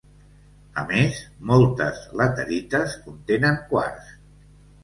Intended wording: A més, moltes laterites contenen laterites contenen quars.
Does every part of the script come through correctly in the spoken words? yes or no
no